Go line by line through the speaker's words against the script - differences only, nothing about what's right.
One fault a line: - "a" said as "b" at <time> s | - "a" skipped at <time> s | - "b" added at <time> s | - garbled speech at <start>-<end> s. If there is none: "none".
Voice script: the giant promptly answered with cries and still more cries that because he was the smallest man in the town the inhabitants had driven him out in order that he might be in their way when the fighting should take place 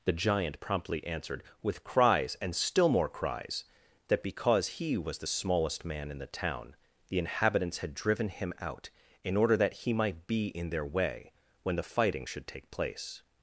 none